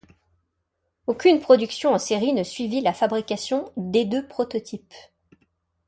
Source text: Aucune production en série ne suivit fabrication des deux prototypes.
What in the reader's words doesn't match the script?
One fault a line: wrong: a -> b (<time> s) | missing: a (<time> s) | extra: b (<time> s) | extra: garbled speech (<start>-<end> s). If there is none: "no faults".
extra: la (2.8 s)